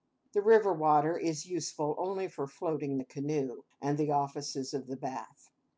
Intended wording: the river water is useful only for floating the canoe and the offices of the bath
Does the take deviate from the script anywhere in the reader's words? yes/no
no